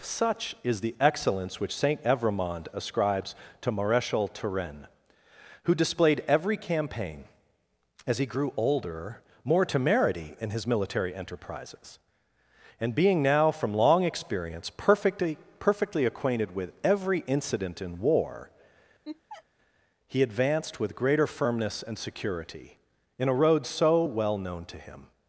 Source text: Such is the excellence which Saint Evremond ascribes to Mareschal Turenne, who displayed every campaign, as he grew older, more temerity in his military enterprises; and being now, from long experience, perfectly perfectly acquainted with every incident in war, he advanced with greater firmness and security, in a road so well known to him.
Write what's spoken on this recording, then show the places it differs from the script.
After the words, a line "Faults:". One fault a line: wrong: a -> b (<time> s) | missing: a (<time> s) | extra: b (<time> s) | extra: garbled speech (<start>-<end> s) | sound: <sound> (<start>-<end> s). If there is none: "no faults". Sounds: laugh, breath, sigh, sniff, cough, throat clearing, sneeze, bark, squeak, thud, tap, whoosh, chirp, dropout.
Such is the excellence which Saint Evremond ascribes to Mareschal Turenne, who displayed every campaign, as he grew older, more temerity in his military enterprises; and being now, from long experience, perfectly perfectly acquainted with every incident in war, he advanced with greater firmness and security, in a road so well known to him.
Faults:
sound: laugh (19.0-19.4 s)